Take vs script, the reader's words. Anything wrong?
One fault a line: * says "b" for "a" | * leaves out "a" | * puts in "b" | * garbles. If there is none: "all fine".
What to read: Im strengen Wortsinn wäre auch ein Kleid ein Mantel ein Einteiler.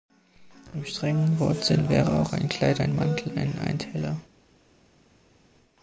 all fine